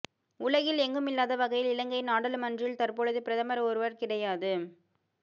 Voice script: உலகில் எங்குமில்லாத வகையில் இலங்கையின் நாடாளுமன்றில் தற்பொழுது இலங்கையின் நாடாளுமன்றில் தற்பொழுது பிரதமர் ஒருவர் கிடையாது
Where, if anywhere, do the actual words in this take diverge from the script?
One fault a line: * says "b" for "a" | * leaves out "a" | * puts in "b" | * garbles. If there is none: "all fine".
* leaves out "இலங்கையின் நாடாளுமன்றில் தற்பொழுது"